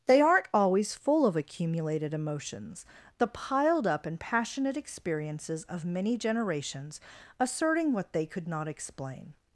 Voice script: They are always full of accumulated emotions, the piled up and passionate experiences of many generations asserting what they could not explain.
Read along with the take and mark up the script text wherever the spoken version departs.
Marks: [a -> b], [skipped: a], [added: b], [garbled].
They [are -> aren't] always full of accumulated emotions, the piled up and passionate experiences of many generations asserting what they could not explain.